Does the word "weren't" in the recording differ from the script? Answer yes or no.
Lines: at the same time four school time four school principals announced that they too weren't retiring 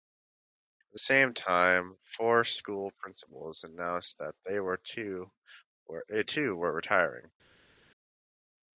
yes